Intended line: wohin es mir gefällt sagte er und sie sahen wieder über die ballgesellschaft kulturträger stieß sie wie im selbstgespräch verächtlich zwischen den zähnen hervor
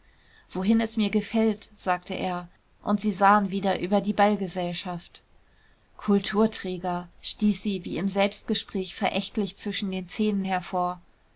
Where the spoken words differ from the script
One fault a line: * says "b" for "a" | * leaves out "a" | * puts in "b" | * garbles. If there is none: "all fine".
all fine